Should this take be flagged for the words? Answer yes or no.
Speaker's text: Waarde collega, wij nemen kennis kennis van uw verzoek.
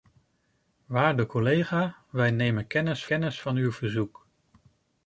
no